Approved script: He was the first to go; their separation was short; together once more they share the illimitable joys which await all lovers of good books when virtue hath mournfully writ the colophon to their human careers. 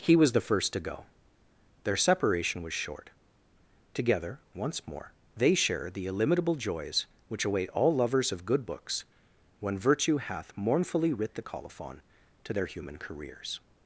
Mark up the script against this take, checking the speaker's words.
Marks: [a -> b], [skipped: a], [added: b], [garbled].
He was the first to go; their separation was short; together once more they share the illimitable joys which await all lovers of good books when virtue hath mournfully writ the colophon to their human careers.